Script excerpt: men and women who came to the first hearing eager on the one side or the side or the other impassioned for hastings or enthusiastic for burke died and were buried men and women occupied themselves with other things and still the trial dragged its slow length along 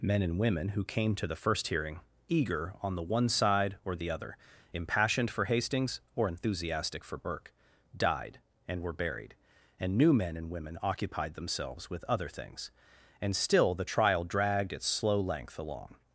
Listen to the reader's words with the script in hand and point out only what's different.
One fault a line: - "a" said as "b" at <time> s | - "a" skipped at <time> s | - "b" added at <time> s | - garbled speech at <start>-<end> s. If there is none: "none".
- "side or the" skipped at 4.1 s
- "and new" added at 9.8 s